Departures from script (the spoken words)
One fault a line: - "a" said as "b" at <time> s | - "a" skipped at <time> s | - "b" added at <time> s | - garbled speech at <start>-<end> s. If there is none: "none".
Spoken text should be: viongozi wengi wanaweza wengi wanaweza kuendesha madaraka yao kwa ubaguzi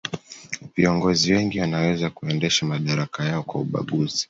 - "wengi wanaweza" skipped at 2.1 s